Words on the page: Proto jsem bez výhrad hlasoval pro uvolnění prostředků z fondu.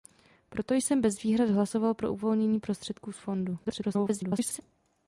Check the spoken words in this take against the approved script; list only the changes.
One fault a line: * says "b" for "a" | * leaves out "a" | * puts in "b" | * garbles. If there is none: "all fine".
* garbles